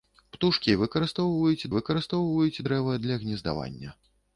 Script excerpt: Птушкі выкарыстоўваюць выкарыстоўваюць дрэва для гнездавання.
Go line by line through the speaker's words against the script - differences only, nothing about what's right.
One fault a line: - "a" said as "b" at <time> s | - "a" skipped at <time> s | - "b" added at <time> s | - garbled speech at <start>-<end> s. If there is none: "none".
none